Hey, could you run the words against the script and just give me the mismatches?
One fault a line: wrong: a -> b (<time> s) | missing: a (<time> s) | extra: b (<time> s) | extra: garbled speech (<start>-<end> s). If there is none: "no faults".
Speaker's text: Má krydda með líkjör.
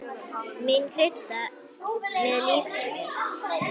no faults